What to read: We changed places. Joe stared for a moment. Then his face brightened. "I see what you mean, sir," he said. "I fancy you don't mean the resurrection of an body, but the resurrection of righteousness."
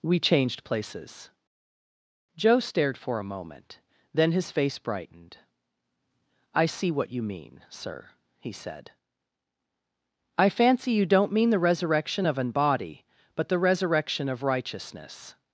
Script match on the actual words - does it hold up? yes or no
yes